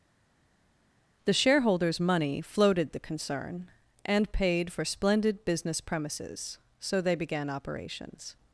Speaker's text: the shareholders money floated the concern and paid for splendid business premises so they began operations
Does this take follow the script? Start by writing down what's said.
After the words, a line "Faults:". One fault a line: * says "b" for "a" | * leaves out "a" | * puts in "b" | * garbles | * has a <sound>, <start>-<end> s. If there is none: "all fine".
the shareholders money floated the concern and paid for splendid business premises so they began operations
Faults:
all fine